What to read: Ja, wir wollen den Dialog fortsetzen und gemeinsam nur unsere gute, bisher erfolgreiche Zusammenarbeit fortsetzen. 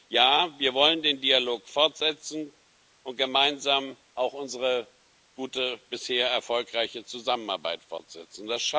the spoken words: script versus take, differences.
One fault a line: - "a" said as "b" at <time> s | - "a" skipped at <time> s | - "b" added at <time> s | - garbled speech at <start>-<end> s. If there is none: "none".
- "nur" said as "auch" at 4.2 s